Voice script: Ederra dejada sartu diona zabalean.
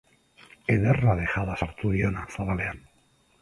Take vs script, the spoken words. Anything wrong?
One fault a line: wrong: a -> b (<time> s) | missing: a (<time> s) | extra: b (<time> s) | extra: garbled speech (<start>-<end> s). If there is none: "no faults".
no faults